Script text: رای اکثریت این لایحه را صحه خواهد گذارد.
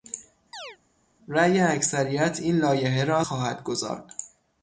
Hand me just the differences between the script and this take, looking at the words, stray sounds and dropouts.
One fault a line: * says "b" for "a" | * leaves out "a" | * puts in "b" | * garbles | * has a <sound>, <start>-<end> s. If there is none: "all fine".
* has a chirp, 0.5-0.8 s
* leaves out "صحه"